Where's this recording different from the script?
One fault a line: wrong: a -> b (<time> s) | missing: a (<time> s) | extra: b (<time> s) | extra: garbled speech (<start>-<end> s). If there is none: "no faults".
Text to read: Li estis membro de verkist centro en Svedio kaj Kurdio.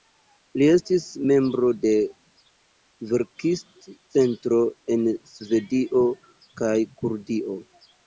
no faults